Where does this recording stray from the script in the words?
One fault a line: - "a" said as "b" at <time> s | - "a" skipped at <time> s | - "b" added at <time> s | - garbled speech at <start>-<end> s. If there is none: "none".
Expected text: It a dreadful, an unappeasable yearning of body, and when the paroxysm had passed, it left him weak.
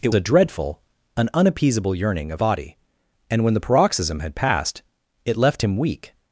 none